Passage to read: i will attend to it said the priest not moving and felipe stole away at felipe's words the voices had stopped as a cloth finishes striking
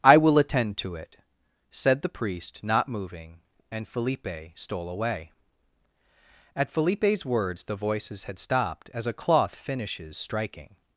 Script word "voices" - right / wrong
right